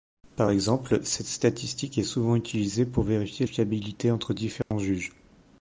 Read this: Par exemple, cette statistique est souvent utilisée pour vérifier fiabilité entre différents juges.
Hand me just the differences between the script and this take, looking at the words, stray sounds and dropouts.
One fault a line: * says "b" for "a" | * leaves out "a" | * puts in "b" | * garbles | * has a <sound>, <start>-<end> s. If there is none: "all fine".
* has a dropout, 4.6-4.7 s